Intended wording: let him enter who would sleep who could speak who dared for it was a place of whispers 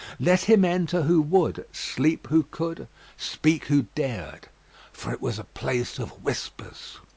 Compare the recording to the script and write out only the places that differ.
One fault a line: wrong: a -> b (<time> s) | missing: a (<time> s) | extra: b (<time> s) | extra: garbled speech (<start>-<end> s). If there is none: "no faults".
no faults